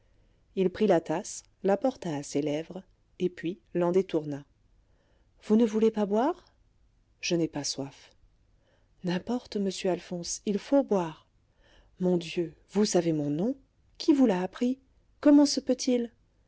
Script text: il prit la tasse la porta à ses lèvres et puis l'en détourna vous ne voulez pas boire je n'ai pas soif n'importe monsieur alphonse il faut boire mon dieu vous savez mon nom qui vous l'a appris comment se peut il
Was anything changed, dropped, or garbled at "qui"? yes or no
no